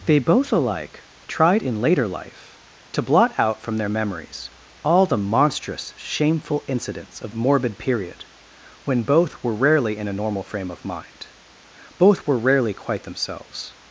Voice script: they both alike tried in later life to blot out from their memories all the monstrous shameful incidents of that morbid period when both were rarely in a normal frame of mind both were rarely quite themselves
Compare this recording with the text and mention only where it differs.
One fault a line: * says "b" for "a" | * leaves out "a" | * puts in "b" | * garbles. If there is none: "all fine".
* leaves out "that"